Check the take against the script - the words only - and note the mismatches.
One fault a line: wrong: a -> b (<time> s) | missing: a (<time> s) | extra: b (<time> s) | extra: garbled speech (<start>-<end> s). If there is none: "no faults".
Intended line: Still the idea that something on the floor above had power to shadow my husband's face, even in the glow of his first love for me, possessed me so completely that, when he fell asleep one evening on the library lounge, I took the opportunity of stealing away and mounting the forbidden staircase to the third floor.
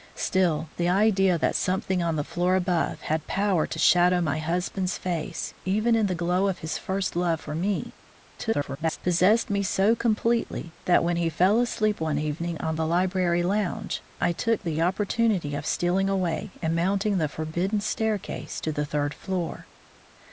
extra: garbled speech (8.4-9.0 s)